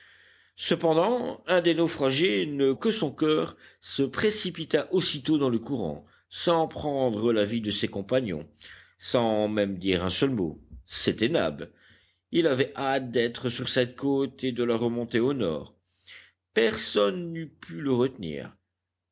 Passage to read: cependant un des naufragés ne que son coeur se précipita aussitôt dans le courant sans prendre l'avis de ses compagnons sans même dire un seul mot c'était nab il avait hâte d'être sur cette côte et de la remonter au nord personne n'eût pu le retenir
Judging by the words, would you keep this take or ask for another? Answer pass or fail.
pass